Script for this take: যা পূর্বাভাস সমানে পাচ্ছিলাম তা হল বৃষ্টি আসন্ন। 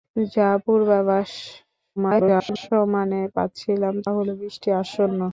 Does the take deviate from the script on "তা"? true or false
true